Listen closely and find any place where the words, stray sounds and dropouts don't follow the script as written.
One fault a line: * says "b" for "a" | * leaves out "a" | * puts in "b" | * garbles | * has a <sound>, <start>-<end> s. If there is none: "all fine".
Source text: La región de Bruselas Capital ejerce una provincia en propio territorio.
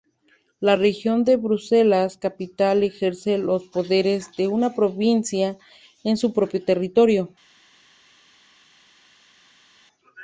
* puts in "los poderes de"
* puts in "su"